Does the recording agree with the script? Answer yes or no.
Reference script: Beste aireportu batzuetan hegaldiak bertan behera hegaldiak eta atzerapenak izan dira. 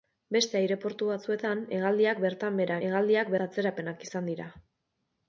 yes